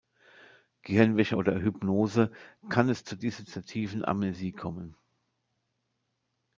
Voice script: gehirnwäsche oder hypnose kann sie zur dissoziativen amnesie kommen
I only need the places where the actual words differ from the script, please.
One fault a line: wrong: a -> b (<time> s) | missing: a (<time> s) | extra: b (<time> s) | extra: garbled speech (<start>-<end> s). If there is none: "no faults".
wrong: sie -> es (2.9 s)